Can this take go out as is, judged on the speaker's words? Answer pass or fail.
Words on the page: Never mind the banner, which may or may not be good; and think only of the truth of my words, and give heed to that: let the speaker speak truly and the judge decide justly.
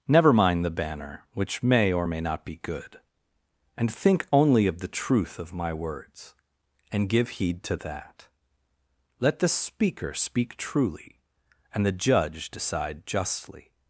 pass